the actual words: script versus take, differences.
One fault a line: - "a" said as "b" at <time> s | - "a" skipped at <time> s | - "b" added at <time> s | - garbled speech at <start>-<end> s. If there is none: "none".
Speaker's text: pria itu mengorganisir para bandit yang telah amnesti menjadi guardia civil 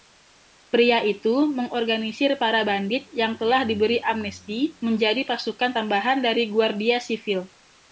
- "diberi" added at 3.6 s
- "pasukan tambahan dari" added at 5.3 s